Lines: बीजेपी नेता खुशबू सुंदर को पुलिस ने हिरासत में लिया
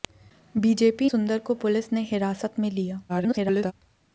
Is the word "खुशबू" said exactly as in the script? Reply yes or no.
no